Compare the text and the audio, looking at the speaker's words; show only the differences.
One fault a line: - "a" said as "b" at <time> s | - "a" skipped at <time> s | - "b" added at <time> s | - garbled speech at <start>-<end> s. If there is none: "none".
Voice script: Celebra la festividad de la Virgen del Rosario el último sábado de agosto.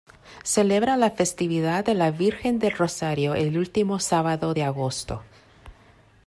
none